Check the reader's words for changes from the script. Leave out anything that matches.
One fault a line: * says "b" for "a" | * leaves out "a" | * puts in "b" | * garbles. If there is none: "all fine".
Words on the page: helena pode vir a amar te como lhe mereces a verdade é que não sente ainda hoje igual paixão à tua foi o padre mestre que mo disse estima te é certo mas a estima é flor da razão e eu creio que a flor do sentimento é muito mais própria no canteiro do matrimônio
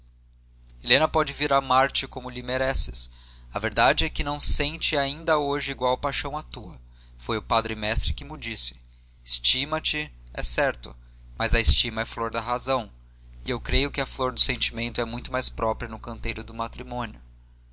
all fine